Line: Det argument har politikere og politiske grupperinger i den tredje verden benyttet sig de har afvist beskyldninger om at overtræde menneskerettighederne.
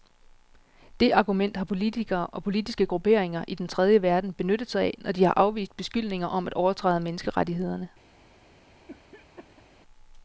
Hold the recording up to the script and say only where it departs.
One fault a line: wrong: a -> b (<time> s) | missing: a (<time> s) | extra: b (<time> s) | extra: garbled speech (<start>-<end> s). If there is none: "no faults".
extra: af når (4.8 s)